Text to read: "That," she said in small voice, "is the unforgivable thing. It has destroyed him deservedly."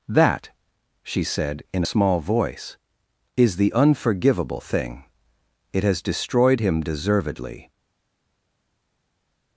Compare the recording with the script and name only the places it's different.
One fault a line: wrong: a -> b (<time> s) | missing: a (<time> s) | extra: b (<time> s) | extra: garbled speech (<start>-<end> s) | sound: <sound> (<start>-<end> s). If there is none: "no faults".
no faults